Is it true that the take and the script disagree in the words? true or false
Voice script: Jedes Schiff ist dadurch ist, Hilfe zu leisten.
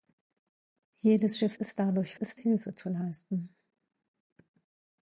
false